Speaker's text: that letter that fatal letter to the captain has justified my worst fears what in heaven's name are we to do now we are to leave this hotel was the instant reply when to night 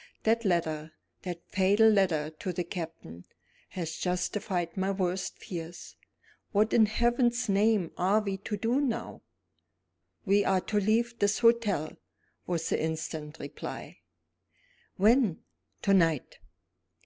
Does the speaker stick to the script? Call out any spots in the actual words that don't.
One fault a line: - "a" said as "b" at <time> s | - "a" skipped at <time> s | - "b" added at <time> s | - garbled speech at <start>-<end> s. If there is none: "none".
none